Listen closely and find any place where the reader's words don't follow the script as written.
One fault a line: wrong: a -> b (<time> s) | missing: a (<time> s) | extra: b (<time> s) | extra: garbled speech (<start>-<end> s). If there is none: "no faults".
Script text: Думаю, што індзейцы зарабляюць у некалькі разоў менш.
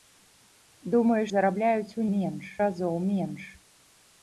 missing: што індзейцы (1.2 s)
wrong: некалькі -> менш (2.1 s)